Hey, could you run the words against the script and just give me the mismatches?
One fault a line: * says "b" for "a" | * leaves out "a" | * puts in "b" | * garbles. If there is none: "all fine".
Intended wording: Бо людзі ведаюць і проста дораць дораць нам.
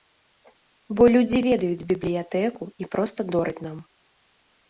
* puts in "бібліятэку"
* leaves out "дораць"